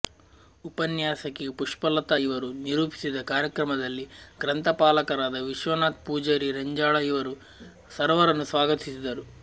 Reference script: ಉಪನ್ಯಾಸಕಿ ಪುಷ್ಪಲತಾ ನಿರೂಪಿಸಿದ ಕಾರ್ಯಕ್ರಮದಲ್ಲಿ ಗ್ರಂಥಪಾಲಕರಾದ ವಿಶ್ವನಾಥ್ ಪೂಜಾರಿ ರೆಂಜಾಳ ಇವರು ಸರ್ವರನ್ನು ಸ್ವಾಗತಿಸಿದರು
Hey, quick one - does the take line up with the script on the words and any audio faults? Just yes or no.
no